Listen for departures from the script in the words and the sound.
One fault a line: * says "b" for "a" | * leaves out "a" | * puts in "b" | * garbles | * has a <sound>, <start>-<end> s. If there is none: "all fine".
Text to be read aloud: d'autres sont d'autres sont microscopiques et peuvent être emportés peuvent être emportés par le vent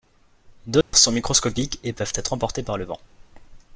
* has a dropout, 0.8-0.9 s
* leaves out "d'autres sont"
* leaves out "peuvent être emportés"